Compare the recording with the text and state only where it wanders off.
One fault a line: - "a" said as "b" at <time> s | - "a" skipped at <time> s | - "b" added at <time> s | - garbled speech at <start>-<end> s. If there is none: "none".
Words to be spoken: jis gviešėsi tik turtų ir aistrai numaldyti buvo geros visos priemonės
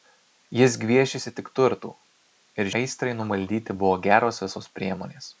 none